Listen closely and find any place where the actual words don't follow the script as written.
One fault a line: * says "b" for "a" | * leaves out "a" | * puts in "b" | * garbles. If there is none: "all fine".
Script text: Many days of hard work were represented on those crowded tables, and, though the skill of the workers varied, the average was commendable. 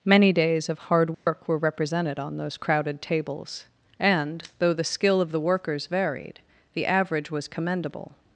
all fine